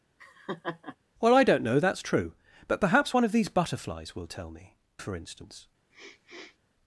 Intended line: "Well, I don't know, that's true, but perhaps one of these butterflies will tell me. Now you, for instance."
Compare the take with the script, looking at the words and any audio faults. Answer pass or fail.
fail